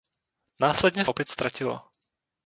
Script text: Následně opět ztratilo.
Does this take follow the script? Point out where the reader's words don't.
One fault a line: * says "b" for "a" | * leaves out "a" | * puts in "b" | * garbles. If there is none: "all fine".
all fine